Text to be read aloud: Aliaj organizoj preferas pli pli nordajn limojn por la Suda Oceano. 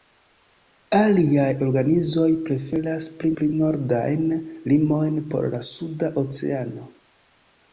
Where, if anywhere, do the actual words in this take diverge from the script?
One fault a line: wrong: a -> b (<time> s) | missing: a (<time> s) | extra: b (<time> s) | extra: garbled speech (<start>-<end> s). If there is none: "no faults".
no faults